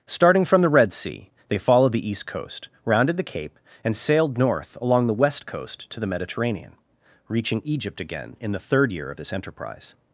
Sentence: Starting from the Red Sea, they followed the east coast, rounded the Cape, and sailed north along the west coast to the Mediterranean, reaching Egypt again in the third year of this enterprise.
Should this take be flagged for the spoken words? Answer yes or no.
no